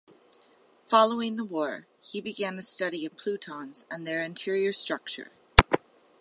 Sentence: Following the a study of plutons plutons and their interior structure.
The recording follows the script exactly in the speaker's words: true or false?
false